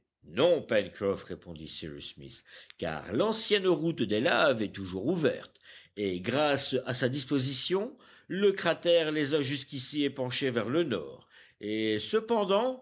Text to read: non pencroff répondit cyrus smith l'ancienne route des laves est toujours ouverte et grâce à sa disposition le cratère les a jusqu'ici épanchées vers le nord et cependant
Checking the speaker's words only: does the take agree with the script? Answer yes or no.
no